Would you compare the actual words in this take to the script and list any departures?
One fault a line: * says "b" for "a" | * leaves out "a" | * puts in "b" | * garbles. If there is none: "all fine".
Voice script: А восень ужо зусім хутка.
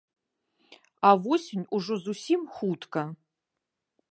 all fine